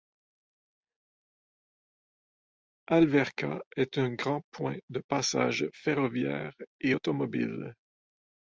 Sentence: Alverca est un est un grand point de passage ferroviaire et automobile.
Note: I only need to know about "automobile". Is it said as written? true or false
true